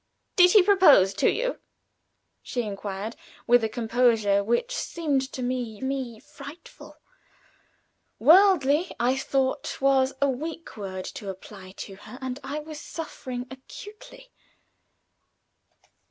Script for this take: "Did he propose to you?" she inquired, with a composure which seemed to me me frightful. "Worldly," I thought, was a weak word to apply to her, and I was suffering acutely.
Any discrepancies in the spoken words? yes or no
no